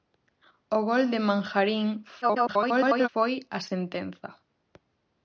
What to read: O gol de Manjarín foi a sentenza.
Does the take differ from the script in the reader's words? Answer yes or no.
yes